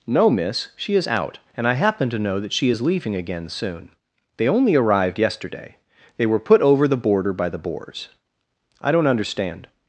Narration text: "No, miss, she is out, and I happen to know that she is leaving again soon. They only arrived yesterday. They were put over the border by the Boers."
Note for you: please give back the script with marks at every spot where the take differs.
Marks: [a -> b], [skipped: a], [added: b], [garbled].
"No, miss, she is out, and I happen to know that she is leaving again soon. They only arrived yesterday. They were put over the border by the Boers." [added: I don't understand]